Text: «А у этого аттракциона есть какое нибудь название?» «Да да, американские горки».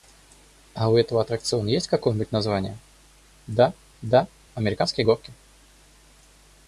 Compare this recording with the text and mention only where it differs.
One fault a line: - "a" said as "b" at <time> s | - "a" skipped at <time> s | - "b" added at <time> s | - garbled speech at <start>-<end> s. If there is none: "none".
none